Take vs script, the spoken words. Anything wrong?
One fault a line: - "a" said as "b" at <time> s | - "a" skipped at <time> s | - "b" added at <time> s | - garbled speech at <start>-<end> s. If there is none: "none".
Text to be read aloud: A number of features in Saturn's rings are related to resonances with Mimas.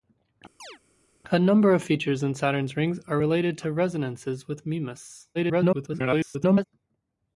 - garbled speech at 5.3-6.6 s